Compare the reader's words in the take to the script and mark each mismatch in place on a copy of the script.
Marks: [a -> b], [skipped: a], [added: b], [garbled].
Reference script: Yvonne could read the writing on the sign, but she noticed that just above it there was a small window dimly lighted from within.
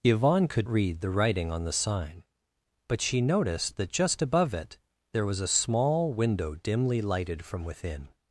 Yvonne could read the writing on the sign, but she noticed that just above it there was a small window dimly lighted from within.